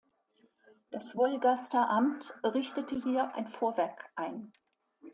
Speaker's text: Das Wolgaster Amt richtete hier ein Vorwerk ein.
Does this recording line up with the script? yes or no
yes